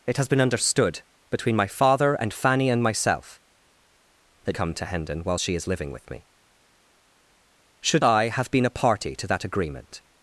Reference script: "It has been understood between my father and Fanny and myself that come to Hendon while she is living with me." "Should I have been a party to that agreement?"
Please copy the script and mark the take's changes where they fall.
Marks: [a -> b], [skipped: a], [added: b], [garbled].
"It has been understood between my father and Fanny and myself that come to Hendon while she is living with me." "Should I have been a party to that agreement?"